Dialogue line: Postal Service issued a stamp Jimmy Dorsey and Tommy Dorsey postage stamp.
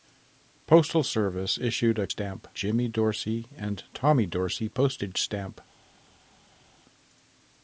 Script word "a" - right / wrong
right